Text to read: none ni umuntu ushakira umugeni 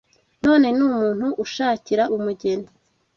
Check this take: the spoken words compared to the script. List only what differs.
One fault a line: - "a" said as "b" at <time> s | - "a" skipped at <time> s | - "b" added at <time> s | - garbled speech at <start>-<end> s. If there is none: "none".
none